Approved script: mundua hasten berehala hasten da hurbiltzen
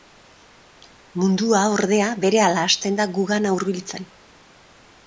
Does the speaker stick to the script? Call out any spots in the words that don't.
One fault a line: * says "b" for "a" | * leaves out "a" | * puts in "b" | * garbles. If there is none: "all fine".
* says "ordea" for "hasten"
* puts in "gugana"